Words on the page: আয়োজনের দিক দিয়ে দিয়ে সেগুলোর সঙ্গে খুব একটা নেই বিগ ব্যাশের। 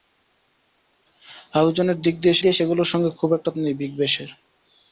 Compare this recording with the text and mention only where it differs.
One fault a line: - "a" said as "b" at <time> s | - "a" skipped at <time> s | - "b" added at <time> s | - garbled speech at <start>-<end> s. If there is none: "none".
none